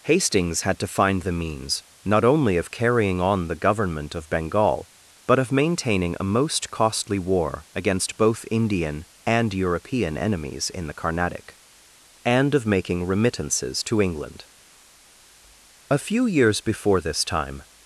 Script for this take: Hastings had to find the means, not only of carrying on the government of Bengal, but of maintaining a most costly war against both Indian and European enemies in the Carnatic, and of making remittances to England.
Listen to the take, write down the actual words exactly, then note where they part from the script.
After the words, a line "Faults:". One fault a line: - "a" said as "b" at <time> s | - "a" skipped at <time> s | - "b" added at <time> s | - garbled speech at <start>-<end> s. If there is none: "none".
Hastings had to find the means, not only of carrying on the government of Bengal, but of maintaining a most costly war against both Indian and European enemies in the Carnatic, and of making remittances to England. A few years before this time
Faults:
- "A few years before this time" added at 15.9 s